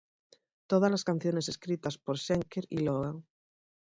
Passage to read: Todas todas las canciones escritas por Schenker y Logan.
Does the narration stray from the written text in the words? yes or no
yes